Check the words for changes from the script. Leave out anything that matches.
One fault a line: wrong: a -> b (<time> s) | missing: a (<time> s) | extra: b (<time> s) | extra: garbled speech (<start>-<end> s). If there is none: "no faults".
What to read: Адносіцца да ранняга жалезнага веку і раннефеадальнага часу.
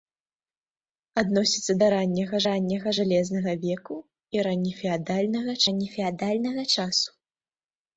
extra: ранняга (2.5 s)
extra: раннефеадальнага (5.7 s)